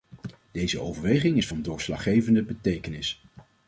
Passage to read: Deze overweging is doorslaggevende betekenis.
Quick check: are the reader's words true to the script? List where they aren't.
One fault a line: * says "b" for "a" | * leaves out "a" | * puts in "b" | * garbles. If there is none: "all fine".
* puts in "van"